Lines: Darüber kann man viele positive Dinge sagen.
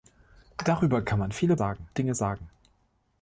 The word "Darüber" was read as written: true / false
true